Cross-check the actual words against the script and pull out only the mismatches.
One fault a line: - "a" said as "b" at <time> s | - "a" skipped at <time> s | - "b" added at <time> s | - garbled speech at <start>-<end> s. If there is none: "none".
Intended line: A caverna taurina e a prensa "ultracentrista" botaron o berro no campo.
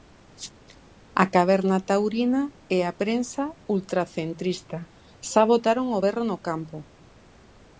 - "xa" added at 5.3 s